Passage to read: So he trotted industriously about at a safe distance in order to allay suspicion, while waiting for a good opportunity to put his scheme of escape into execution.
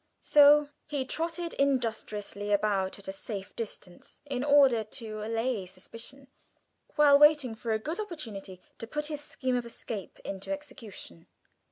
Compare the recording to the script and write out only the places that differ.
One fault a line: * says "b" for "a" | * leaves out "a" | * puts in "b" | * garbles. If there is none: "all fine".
all fine